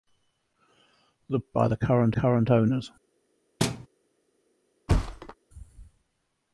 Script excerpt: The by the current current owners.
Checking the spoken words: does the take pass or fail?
pass